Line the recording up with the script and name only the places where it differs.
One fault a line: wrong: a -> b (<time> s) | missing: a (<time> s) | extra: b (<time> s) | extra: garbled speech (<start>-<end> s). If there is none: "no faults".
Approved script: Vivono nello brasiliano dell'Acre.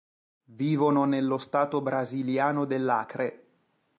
extra: stato (1.4 s)